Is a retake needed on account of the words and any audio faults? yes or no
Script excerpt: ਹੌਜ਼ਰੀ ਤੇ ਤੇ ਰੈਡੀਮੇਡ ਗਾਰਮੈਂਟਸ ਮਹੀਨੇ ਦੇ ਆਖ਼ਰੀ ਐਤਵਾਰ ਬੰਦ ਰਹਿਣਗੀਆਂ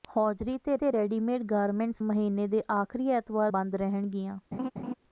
yes